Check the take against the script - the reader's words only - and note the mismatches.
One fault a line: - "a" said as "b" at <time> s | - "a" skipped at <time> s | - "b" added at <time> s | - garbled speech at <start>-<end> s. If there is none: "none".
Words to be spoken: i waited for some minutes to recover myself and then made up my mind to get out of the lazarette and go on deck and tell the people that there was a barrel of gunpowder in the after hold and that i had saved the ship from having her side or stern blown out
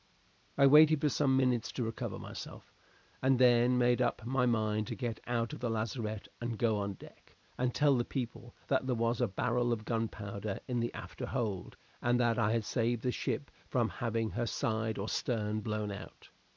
none